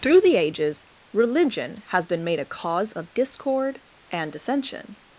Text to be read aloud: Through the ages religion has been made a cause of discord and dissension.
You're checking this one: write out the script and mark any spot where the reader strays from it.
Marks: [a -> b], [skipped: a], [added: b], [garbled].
Through the ages religion has been made a cause of discord and dissension.